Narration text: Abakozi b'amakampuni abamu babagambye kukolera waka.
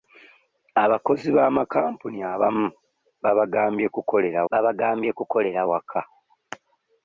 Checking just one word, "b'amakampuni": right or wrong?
right